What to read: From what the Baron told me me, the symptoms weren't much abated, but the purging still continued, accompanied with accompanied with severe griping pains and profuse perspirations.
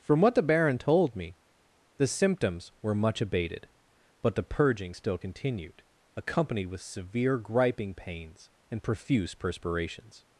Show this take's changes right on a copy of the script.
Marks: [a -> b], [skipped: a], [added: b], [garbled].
From what the Baron told me [skipped: me,] the symptoms [weren't -> were] much abated, but the purging still continued, accompanied with [skipped: accompanied with] severe griping pains and profuse perspirations.